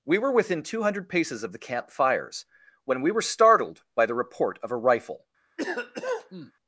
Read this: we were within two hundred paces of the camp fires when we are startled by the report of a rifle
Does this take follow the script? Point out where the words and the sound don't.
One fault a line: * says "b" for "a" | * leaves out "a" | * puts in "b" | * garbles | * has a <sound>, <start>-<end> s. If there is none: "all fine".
* says "were" for "are"
* has a cough, 5.6-6.5 s